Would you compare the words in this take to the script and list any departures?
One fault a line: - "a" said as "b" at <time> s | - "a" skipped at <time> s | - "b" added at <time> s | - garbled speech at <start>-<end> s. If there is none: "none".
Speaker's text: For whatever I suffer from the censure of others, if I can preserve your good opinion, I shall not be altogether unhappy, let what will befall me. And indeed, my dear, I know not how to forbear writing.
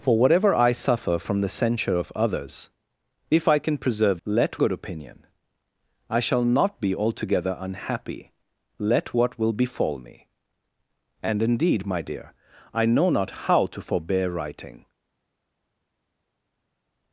- "your" said as "let" at 4.3 s